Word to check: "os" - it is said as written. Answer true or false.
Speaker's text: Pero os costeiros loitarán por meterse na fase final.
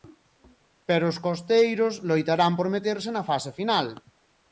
true